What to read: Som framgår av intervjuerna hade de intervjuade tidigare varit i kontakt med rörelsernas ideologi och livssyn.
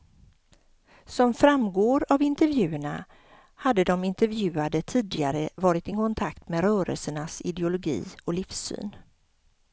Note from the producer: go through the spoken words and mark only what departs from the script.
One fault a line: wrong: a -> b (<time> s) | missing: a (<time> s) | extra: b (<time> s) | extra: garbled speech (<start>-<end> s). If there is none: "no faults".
no faults